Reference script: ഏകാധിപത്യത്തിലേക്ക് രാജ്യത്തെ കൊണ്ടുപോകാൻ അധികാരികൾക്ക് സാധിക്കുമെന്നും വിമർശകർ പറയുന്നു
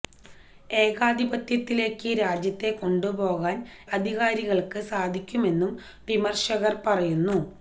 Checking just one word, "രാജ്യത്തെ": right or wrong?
right